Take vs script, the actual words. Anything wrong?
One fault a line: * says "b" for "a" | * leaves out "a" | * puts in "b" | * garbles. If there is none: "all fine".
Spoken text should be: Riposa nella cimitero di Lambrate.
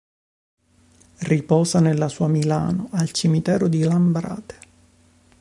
* puts in "sua Milano al"